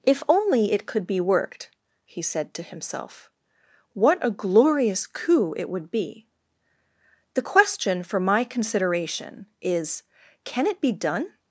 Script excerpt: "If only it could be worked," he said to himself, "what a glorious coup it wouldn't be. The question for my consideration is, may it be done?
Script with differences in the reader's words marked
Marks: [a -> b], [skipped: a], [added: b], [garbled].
"If only it could be worked," he said to himself, "what a glorious coup it [wouldn't -> would] be. The question for my consideration is, [may -> can] it be done?